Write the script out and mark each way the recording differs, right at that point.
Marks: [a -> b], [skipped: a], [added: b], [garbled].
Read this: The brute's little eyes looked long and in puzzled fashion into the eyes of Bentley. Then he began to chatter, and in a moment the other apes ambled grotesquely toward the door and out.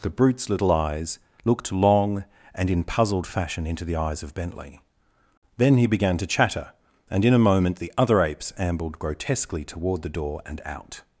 The brute's little eyes looked long and in puzzled fashion into the eyes of Bentley. Then he began to chatter, and in a moment the other apes ambled grotesquely toward the door and out.